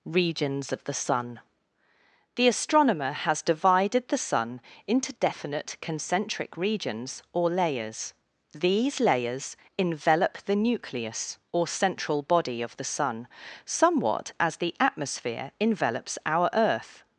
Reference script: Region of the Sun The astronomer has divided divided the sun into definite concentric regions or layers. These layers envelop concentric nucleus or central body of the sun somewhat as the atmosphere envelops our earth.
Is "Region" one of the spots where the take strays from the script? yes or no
yes